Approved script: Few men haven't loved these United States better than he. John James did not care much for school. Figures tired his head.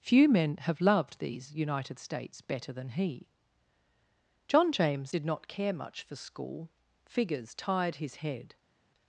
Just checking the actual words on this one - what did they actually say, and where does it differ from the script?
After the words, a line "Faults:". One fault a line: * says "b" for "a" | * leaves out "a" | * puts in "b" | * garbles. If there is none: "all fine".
Few men have loved these United States better than he. John James did not care much for school. Figures tired his head.
Faults:
* says "have" for "haven't"